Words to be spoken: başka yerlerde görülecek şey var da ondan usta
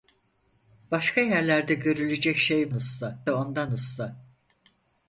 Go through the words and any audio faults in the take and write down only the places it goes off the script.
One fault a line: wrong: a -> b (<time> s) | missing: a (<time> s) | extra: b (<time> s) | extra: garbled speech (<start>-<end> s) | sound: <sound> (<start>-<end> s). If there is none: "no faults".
wrong: var -> usta (2.7 s)